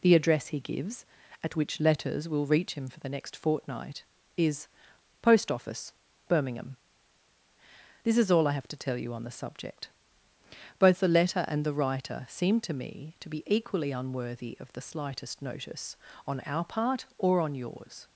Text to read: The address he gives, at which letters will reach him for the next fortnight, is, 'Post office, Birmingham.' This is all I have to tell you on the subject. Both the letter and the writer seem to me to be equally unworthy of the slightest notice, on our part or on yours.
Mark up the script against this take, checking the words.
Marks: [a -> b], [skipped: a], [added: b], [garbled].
The address he gives, at which letters will reach him for the next fortnight, is, 'Post office, Birmingham.' This is all I have to tell you on the subject. Both the letter and the writer seem to me to be equally unworthy of the slightest notice, on our part or on yours.